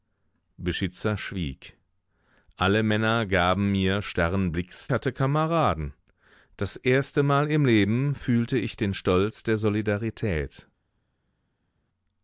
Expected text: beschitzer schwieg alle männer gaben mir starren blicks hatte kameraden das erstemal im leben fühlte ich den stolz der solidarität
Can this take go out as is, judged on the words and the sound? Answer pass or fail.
pass